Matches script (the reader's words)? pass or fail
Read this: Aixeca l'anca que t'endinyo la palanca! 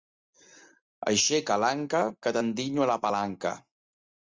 pass